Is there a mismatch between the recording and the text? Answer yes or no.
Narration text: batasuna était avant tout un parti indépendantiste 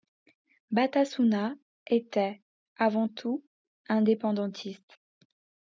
yes